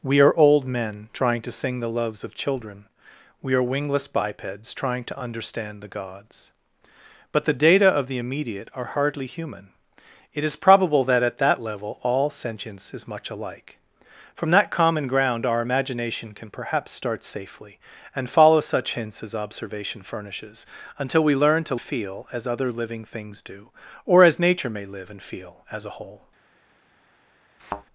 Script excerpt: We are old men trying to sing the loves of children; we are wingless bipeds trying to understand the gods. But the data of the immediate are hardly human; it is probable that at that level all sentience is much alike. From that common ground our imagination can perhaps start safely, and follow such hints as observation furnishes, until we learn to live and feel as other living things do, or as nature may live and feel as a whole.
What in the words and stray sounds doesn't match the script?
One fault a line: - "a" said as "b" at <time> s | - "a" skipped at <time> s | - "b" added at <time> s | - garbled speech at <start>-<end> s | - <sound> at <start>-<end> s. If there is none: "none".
- "live and" skipped at 21.8 s
- thud at 27.6-27.8 s